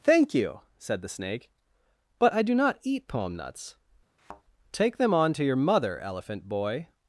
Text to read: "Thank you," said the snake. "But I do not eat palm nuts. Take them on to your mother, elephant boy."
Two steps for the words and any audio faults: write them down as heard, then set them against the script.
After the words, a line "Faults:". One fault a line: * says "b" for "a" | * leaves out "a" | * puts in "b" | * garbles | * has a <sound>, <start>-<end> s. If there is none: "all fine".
"Thank you," said the snake. "But I do not eat palm nuts. Take them on to your mother, elephant boy."
Faults:
* has a thud, 4.2-4.4 s